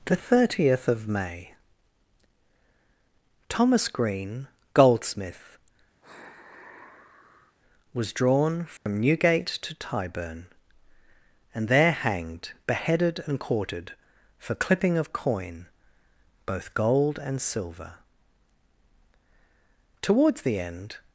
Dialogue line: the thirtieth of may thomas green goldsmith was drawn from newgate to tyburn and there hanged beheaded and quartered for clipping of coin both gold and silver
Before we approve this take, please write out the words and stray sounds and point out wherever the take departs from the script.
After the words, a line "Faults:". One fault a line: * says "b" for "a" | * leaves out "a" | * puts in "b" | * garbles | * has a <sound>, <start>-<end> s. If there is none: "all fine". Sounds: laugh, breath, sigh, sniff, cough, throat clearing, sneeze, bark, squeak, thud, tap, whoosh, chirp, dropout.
the thirtieth of may thomas green goldsmith was drawn from newgate to tyburn and there hanged beheaded and quartered for clipping of coin both gold and silver towards the end
Faults:
* has a sigh, 6.0-7.6 s
* has a dropout, 8.8-8.9 s
* puts in "towards the end"